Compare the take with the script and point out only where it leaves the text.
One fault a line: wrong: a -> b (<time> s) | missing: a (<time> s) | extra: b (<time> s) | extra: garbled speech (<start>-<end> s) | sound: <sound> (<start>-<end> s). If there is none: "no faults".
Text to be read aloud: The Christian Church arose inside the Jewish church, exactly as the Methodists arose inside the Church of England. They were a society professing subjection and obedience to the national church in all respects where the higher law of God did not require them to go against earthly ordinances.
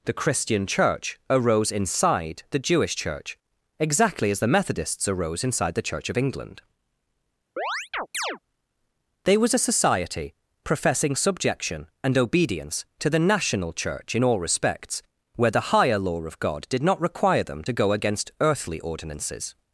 sound: chirp (7.6-8.4 s)
wrong: were -> was (9.4 s)